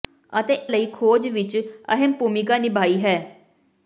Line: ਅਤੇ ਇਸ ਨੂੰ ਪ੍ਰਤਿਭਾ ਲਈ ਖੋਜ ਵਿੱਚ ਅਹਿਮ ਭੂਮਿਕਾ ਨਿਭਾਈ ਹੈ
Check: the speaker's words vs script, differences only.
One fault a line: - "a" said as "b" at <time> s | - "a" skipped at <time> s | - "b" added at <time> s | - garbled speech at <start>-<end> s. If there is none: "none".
- "ਇਸ ਨੂੰ ਪ੍ਰਤਿਭਾ" skipped at 0.5 s